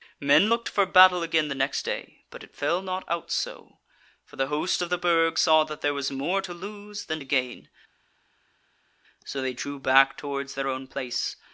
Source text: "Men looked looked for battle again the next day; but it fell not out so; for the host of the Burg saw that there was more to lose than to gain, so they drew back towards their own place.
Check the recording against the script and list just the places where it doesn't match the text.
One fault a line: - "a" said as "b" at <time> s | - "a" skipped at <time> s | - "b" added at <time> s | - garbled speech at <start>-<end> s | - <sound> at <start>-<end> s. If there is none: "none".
- "looked" skipped at 0.7 s